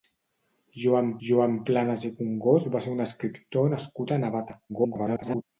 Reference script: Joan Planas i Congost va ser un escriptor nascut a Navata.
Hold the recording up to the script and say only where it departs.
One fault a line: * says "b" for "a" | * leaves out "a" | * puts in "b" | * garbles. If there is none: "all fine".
* puts in "joan"
* garbles